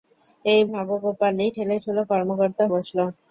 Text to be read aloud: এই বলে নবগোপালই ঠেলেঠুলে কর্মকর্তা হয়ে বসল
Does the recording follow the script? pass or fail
fail